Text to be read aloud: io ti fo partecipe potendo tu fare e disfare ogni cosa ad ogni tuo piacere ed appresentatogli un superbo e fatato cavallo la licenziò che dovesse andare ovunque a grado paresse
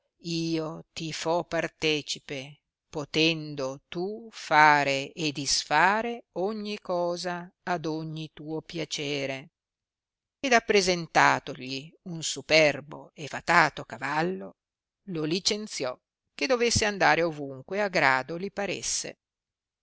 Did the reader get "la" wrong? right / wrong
wrong